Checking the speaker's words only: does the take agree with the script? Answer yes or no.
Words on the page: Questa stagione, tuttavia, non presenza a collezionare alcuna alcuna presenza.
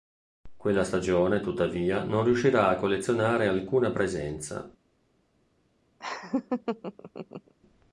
no